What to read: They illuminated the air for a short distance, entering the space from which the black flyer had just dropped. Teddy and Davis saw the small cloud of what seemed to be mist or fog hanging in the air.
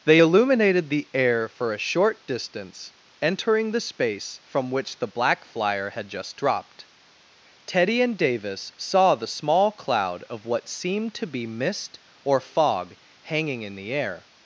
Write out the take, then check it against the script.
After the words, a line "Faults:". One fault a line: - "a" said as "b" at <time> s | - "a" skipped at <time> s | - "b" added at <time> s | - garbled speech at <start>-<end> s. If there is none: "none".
They illuminated the air for a short distance, entering the space from which the black flyer had just dropped. Teddy and Davis saw the small cloud of what seemed to be mist or fog hanging in the air.
Faults:
none